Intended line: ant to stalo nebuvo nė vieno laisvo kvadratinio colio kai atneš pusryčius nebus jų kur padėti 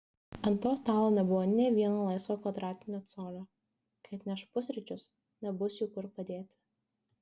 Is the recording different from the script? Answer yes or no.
no